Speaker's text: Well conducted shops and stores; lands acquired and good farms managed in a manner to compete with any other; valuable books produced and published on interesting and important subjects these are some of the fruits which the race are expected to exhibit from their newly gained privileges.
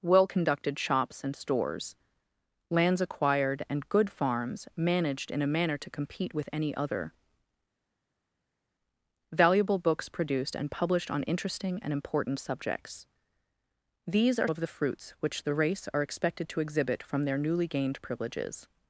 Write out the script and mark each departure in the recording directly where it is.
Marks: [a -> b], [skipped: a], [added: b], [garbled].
Well conducted shops and stores; lands acquired and good farms managed in a manner to compete with any other; valuable books produced and published on interesting and important subjects these are [skipped: some] of the fruits which the race are expected to exhibit from their newly gained privileges.